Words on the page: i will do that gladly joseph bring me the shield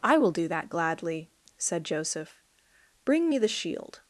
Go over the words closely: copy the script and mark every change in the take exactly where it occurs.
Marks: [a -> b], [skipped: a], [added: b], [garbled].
i will do that gladly [added: said] joseph bring me the shield